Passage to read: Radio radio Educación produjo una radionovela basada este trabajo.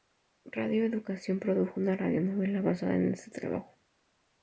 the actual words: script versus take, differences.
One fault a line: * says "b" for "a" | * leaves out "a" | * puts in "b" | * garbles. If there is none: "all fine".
* leaves out "radio"
* puts in "en"